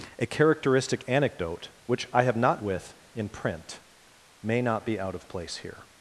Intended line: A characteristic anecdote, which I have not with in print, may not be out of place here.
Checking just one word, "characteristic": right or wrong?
right